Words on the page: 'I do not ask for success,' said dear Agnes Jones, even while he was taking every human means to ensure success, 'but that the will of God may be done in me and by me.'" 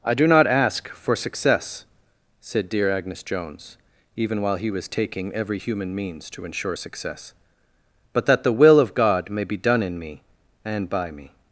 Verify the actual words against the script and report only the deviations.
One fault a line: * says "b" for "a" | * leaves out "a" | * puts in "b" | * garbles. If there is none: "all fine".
all fine